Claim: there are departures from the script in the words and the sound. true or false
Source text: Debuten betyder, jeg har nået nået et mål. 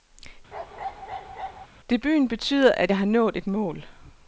true